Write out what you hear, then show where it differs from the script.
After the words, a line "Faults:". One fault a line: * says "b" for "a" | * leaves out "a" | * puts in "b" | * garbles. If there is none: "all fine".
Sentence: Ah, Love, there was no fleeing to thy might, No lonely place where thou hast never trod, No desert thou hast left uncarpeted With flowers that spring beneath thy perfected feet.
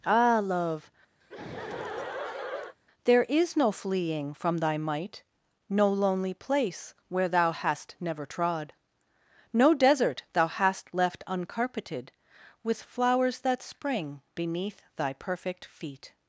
Ah, Love, there is no fleeing from thy might, No lonely place where thou hast never trod, No desert thou hast left uncarpeted With flowers that spring beneath thy perfect feet.
Faults:
* says "is" for "was"
* says "from" for "to"
* says "perfect" for "perfected"